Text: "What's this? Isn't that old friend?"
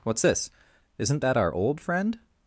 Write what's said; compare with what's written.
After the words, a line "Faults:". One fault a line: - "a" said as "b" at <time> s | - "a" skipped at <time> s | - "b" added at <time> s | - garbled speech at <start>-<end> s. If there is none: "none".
"What's this? Isn't that our old friend?"
Faults:
- "our" added at 1.4 s